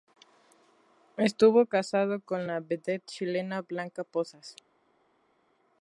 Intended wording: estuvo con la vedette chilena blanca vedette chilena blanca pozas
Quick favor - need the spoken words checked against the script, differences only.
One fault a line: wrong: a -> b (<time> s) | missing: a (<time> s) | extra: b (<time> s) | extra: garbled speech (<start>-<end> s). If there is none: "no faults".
extra: casado (1.7 s)
missing: vedette chilena blanca (4.0 s)